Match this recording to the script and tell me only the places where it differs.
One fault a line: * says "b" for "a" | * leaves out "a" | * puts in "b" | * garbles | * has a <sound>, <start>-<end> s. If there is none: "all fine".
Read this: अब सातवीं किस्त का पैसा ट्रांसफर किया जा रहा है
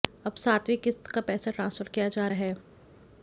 * leaves out "रहा"